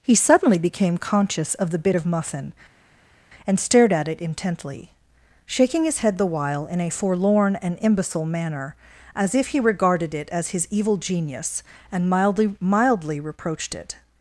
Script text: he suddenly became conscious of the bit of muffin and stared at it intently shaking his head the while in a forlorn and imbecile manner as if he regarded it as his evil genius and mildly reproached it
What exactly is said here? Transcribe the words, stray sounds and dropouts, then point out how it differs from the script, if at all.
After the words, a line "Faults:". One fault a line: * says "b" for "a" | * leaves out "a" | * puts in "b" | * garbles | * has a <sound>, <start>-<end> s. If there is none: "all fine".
he suddenly became conscious of the bit of muffin and stared at it intently shaking his head the while in a forlorn and imbecile manner as if he regarded it as his evil genius and mildly mildly reproached it
Faults:
* puts in "mildly"